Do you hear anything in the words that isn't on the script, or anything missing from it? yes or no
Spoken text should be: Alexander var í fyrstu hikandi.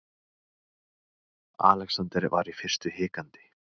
no